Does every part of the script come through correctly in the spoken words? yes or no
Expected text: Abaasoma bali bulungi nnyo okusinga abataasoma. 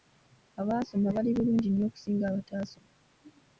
yes